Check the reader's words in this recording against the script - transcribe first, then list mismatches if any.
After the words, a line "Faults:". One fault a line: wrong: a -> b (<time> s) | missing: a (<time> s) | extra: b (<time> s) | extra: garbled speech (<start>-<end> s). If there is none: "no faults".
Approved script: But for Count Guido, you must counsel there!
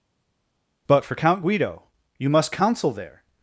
But for Count Guido, you must counsel there!
Faults:
no faults